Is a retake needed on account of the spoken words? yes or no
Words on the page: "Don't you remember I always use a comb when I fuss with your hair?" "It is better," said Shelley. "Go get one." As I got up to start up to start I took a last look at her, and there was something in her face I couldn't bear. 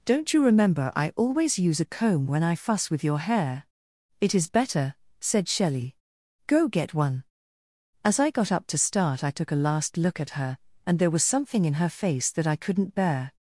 yes